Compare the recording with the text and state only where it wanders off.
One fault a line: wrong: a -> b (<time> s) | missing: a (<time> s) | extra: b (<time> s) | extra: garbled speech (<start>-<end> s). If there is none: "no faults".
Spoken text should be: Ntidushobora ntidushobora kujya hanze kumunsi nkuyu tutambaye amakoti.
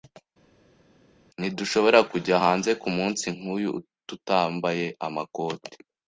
missing: ntidushobora (2.0 s)